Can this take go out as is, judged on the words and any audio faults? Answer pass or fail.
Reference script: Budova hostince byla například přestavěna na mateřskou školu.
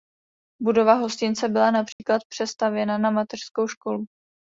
fail